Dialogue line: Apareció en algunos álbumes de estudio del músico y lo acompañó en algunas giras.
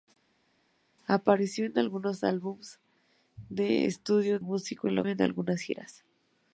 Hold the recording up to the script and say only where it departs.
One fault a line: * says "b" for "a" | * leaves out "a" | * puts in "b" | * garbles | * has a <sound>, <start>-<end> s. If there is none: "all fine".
* leaves out "del"
* leaves out "acompañó"